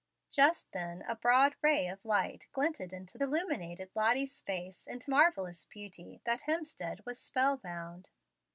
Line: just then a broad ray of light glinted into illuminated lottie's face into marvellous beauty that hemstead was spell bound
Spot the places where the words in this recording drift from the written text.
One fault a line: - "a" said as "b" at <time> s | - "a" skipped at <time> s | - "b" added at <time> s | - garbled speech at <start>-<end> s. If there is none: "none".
none